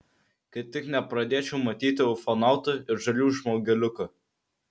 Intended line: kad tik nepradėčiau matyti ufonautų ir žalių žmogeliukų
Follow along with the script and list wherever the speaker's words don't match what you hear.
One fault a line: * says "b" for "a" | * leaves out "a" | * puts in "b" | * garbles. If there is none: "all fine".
all fine